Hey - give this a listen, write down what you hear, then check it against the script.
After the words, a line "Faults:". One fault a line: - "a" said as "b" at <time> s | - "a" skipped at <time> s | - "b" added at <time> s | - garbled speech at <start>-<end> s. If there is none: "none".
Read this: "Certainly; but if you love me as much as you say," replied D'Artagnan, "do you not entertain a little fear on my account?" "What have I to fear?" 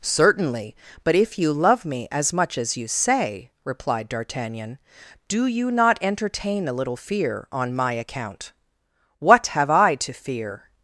"Certainly; but if you love me as much as you say," replied D'Artagnan, "do you not entertain a little fear on my account?" "What have I to fear?"
Faults:
none